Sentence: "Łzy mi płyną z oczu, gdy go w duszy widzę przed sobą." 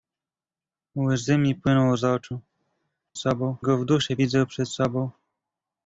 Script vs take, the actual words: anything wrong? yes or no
yes